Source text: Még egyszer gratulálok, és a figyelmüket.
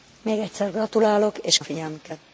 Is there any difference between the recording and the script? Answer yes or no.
no